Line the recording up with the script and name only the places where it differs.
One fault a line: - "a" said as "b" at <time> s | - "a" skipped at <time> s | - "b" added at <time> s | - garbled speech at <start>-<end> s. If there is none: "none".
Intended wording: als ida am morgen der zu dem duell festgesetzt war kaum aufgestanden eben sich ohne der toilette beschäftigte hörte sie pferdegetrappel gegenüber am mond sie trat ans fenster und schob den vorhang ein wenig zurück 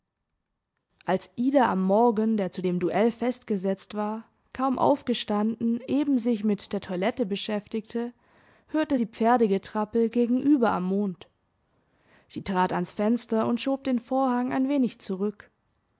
- "ohne" said as "mit" at 6.4 s